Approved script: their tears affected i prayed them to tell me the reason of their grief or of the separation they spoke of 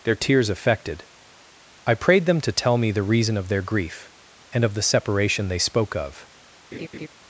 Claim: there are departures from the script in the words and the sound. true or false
true